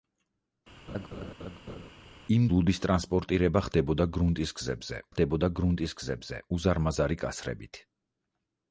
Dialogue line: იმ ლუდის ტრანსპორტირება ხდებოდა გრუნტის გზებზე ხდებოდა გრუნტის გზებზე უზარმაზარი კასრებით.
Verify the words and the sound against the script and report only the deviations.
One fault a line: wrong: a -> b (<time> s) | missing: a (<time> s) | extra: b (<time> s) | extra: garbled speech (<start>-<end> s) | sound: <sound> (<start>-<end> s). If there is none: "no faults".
sound: laugh (0.9-1.9 s)